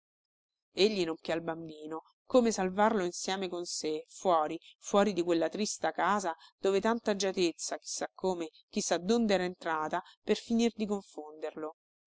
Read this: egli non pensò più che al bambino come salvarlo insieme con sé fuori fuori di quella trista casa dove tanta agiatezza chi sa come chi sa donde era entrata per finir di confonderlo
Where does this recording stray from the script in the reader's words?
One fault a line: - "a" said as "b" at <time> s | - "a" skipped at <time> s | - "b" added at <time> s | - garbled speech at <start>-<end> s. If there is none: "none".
- "pensò più" skipped at 1.1 s